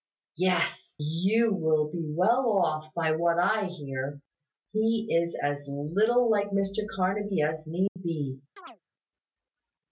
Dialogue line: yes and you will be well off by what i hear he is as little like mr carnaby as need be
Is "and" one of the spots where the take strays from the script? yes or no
yes